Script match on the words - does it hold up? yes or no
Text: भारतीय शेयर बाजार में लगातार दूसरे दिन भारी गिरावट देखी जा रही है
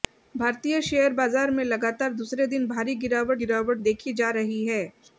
no